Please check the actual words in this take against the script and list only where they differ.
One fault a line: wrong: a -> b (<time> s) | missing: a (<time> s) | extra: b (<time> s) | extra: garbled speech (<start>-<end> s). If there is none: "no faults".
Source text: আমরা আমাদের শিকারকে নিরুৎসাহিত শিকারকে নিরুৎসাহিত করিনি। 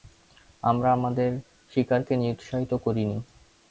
missing: শিকারকে নিরুৎসাহিত (2.7 s)